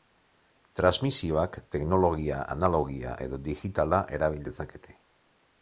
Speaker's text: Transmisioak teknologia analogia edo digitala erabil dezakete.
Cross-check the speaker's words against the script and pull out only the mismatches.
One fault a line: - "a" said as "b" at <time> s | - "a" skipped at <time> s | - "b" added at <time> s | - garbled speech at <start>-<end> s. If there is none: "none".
none